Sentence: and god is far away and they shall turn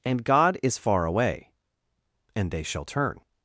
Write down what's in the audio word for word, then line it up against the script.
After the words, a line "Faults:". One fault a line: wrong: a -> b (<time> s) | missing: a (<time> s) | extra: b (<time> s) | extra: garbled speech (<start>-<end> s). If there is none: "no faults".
and god is far away and they shall turn
Faults:
no faults